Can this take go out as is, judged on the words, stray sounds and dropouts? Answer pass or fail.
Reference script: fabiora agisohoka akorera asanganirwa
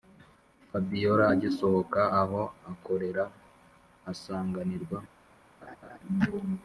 fail